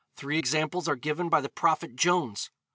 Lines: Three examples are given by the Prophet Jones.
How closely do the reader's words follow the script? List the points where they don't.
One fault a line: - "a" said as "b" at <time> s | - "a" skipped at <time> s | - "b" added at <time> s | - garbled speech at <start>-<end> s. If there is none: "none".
none